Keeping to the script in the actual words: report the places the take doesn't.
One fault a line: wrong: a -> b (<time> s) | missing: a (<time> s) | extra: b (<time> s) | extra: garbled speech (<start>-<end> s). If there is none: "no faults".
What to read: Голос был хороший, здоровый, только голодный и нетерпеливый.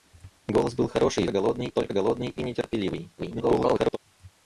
wrong: здоровый -> голодный (1.3 s)
extra: garbled speech (3.2-4.0 s)